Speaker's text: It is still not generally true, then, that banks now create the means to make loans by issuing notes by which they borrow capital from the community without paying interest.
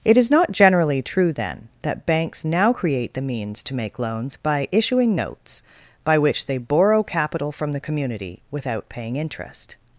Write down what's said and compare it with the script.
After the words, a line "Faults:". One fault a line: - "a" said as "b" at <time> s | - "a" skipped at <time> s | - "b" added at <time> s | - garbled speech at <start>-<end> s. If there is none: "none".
It is not generally true, then, that banks now create the means to make loans by issuing notes by which they borrow capital from the community without paying interest.
Faults:
- "still" skipped at 0.3 s